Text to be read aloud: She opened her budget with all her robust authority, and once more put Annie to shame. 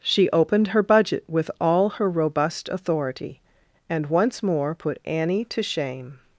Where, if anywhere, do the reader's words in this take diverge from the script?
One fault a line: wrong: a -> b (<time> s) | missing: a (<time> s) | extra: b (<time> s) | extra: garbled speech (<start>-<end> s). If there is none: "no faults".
no faults